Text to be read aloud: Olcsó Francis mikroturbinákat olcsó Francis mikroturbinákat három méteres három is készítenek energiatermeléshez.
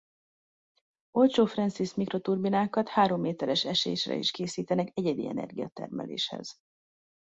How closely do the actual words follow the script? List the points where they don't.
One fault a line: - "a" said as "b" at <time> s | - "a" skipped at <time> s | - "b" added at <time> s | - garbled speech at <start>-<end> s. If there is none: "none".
- "olcsó Francis mikroturbinákat" skipped at 2.9 s
- "három" said as "esésre" at 3.6 s
- "egyedi" added at 4.9 s